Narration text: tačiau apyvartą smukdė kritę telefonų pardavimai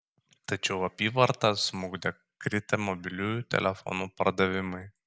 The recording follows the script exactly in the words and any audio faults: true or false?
false